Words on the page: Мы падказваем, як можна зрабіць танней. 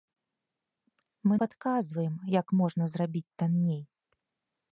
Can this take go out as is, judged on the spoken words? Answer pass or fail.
pass